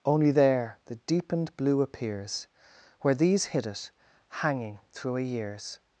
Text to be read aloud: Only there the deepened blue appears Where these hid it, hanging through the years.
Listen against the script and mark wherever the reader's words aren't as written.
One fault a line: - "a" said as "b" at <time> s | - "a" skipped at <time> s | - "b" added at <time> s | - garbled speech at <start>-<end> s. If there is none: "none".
- "the" said as "a" at 5.2 s